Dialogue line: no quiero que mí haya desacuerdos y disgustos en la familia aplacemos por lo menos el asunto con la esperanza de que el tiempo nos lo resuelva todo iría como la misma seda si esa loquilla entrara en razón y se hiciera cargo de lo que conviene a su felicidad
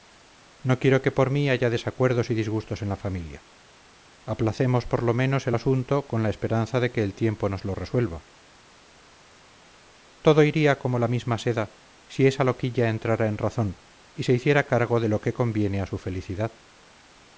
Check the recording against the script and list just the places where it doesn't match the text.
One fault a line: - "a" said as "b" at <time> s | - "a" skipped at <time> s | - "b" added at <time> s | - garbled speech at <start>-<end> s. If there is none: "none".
- "por" added at 1.1 s